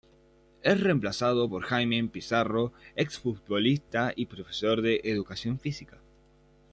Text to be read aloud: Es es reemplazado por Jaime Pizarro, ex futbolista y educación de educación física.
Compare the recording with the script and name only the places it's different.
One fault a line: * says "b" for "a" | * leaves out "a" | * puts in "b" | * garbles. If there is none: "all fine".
* leaves out "es"
* says "profesor" for "educación"